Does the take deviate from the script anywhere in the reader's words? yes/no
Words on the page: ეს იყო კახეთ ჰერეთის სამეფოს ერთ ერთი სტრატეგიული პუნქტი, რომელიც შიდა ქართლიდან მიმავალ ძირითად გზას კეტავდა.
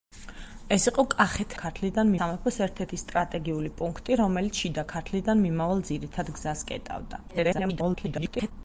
yes